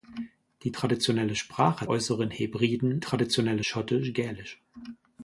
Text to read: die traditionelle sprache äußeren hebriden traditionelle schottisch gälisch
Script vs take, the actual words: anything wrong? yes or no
no